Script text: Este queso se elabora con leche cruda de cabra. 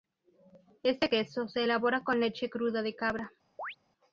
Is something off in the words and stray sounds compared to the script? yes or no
yes